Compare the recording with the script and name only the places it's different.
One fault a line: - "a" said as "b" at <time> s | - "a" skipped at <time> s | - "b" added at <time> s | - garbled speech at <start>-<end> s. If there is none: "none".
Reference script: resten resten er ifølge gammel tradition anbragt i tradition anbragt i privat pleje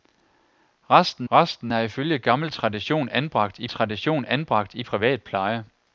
none